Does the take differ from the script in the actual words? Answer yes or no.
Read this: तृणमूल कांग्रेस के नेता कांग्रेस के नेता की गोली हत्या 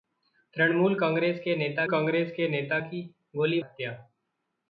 no